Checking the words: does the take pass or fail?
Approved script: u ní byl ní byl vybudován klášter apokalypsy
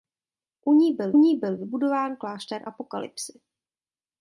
pass